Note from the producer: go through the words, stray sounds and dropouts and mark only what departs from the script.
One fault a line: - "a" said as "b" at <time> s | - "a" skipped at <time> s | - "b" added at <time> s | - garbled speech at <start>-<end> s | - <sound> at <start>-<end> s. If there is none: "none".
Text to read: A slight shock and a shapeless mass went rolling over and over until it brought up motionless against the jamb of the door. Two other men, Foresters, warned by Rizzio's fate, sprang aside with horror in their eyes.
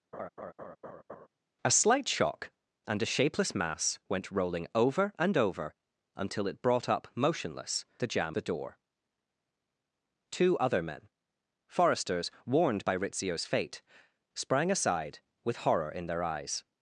- laugh at 0.1-1.3 s
- "against" skipped at 7.8 s
- "of" skipped at 8.4 s